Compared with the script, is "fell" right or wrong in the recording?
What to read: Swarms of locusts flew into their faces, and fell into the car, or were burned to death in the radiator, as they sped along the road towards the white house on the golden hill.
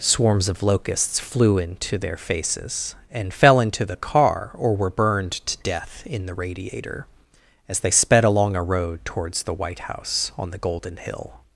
right